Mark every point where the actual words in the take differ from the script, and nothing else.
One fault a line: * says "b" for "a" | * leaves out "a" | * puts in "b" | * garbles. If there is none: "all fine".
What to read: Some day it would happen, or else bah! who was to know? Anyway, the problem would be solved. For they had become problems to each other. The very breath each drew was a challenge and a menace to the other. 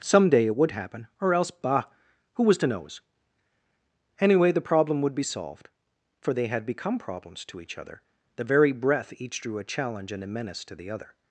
* says "knows" for "know"
* leaves out "was"